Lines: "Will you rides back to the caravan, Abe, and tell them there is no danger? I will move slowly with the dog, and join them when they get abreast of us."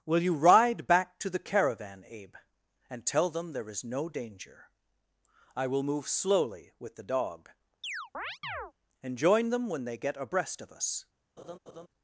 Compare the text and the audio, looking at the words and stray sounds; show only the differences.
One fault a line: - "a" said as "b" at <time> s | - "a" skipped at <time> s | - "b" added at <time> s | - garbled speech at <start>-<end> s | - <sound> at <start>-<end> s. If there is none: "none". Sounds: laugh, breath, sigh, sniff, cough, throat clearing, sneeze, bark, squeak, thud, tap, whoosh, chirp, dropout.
- "rides" said as "ride" at 0.3 s
- chirp at 7.8-8.7 s
- laugh at 11.4-11.9 s